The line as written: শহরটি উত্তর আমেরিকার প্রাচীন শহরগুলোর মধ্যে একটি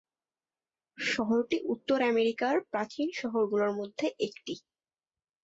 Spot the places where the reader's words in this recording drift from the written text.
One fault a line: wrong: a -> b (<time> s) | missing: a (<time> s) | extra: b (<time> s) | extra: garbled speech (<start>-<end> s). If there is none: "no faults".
no faults